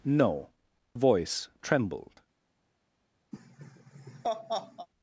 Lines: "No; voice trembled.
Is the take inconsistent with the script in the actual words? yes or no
no